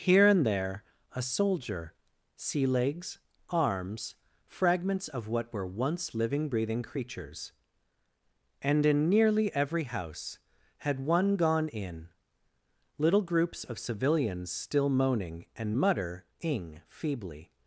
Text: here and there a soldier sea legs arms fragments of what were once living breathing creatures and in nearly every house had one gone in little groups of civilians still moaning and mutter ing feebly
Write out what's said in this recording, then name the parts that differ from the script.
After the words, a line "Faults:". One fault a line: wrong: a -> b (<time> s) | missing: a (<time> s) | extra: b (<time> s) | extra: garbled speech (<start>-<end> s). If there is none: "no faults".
here and there a soldier sea legs arms fragments of what were once living breathing creatures and in nearly every house had one gone in little groups of civilians still moaning and mutter ing feebly
Faults:
no faults